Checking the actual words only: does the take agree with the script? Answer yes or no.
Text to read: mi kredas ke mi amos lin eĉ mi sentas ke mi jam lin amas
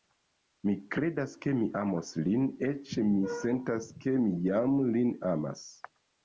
yes